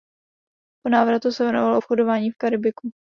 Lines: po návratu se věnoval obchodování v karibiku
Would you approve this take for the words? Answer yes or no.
yes